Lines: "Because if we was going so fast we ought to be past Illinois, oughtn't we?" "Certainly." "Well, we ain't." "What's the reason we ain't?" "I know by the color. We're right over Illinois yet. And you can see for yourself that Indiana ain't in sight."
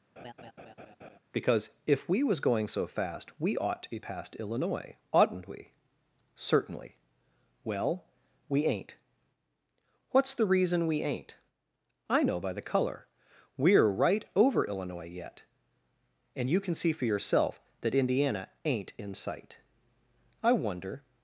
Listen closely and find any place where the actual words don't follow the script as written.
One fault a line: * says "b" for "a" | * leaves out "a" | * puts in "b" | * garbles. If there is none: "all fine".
* puts in "I wonder"